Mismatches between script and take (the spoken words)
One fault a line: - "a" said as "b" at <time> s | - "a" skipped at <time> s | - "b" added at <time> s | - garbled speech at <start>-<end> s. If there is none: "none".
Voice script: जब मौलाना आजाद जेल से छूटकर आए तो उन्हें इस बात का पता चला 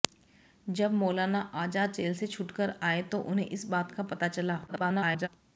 - garbled speech at 4.7-5.3 s